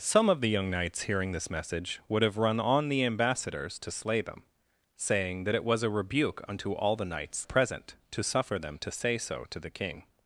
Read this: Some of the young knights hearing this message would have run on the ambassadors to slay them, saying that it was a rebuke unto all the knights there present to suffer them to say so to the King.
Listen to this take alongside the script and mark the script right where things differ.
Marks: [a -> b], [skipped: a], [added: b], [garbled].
Some of the young knights hearing this message would have run on the ambassadors to slay them, saying that it was a rebuke unto all the knights [skipped: there] present to suffer them to say so to the King.